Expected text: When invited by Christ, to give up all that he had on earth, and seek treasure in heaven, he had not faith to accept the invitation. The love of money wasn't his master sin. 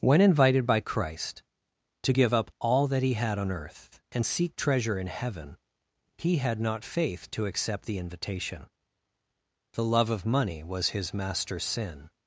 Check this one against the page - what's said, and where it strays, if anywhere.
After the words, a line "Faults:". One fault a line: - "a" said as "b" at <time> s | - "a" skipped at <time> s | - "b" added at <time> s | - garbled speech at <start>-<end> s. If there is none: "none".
When invited by Christ, to give up all that he had on earth, and seek treasure in heaven, he had not faith to accept the invitation. The love of money was his master sin.
Faults:
- "wasn't" said as "was" at 10.6 s